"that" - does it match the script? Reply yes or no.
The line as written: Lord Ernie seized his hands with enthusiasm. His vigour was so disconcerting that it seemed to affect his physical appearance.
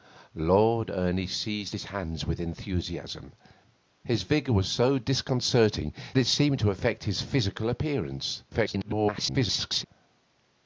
no